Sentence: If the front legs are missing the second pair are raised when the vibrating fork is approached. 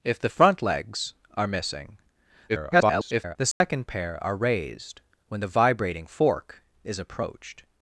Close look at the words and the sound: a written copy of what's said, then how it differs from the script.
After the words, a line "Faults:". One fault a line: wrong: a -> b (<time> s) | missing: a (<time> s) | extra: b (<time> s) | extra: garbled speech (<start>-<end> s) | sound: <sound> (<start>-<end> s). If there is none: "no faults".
If the front legs are missing [garbled] the second pair are raised when the vibrating fork is approached.
Faults:
extra: garbled speech (2.5-3.4 s)
sound: dropout (3.5-3.6 s)